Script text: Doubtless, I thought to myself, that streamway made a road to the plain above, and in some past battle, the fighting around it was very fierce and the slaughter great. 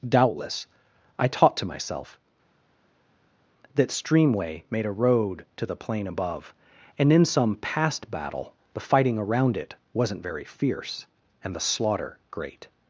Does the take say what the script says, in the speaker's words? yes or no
no